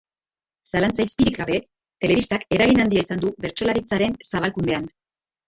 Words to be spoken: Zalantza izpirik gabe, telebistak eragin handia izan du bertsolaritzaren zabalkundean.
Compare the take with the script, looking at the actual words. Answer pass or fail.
pass